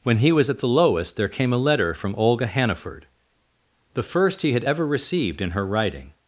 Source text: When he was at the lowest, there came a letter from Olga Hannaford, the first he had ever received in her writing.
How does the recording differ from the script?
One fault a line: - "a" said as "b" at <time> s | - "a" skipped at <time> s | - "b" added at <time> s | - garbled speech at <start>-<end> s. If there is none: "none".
none